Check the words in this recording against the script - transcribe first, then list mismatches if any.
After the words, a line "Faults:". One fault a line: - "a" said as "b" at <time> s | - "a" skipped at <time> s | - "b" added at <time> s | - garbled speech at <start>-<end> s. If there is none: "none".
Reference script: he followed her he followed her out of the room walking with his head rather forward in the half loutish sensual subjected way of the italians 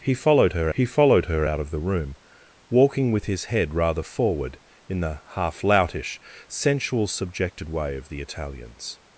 he followed her he followed her out of the room walking with his head rather forward in the half loutish sensual subjected way of the italians
Faults:
none